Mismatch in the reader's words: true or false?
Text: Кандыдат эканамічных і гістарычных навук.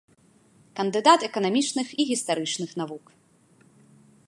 false